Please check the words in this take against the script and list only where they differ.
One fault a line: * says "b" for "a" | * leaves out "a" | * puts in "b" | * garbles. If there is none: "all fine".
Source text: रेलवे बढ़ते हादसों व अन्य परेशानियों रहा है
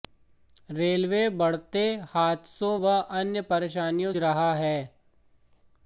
all fine